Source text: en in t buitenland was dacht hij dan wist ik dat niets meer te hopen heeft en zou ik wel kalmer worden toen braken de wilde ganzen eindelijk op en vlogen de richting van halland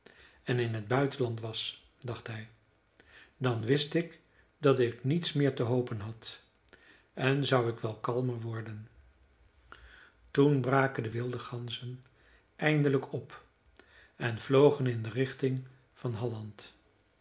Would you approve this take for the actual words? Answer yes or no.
no